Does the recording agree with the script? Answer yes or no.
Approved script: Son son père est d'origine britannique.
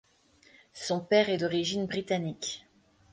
no